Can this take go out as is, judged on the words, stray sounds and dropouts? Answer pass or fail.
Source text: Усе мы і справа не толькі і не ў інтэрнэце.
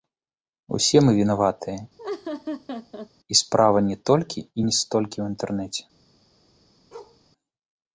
fail